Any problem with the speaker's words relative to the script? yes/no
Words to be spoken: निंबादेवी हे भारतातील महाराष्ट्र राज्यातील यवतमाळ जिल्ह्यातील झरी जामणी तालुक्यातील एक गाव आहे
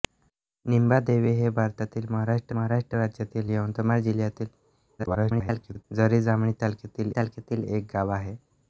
yes